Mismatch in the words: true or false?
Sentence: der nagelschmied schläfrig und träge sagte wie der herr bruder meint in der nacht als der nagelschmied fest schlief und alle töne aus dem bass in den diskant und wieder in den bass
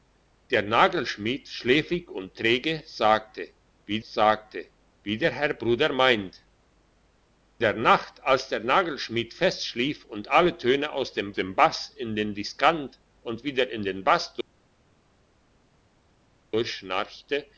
true